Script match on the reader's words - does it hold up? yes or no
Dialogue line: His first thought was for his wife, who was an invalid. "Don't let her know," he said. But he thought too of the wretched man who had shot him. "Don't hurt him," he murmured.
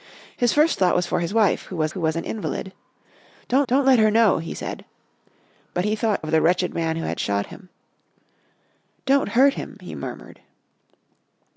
no